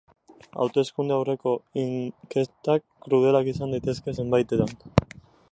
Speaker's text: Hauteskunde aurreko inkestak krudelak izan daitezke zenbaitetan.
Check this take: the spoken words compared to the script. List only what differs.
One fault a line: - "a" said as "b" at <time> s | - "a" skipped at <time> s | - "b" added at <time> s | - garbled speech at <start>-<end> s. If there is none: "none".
none